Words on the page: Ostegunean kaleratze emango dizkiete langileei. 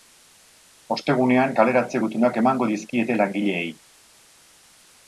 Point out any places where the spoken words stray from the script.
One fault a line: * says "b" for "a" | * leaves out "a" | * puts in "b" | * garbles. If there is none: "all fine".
* puts in "gutunak"